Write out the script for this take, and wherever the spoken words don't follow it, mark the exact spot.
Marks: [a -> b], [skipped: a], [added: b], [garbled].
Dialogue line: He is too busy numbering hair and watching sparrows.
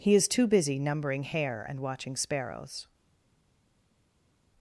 He is too busy numbering hair and watching sparrows.